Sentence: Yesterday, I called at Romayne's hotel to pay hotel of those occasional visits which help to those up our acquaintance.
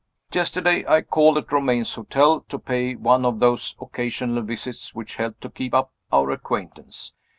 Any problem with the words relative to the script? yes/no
yes